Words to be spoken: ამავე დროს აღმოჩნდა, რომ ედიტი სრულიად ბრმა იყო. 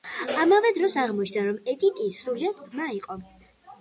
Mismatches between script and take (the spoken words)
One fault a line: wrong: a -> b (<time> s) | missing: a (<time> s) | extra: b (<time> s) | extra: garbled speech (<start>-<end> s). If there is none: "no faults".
no faults